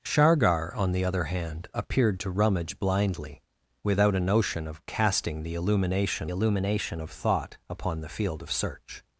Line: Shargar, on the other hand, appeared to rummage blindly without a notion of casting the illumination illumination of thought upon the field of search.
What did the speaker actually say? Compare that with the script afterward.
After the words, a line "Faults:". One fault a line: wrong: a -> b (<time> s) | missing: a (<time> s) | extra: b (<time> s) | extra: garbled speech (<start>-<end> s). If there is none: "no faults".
Shargar, on the other hand, appeared to rummage blindly without a notion of casting the illumination illumination of thought upon the field of search.
Faults:
no faults